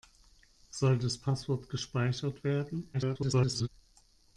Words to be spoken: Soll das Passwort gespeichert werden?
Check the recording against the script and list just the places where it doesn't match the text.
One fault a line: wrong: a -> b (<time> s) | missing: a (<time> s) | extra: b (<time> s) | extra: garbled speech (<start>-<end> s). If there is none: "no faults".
extra: garbled speech (2.9-3.7 s)